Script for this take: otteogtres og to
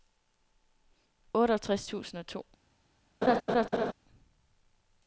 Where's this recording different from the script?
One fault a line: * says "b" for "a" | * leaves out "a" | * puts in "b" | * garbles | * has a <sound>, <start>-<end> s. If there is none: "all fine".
* puts in "tusind"
* has a laugh, 3.2-3.9 s